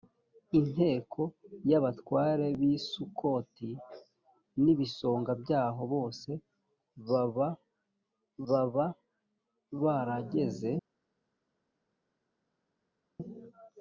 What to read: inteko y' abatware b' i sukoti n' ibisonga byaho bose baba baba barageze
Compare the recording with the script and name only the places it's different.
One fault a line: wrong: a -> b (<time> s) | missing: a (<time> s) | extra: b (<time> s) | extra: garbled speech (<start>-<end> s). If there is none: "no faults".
no faults